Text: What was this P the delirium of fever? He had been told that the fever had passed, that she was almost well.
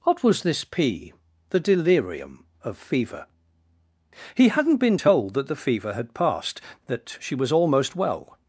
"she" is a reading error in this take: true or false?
false